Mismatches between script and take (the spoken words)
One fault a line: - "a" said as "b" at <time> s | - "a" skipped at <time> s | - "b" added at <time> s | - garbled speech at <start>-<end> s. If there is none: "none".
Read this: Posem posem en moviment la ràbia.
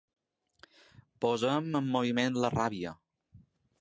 - "posem" skipped at 1.7 s